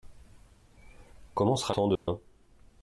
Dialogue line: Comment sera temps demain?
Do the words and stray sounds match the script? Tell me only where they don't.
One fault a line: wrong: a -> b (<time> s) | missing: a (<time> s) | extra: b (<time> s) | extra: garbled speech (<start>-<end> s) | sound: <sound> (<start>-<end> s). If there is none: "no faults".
sound: dropout (2.0-2.1 s)